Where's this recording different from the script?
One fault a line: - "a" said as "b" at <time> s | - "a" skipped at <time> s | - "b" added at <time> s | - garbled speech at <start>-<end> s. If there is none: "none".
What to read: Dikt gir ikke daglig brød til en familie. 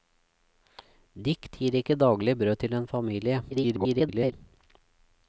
- garbled speech at 3.5-4.3 s